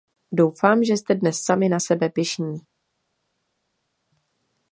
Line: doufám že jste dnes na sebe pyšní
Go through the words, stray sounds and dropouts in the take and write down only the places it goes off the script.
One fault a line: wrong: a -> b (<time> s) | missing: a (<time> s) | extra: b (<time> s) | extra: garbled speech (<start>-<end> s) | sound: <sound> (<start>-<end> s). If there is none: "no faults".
extra: sami (1.4 s)